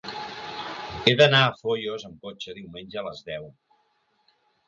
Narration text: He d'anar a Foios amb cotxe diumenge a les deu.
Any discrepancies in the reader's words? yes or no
no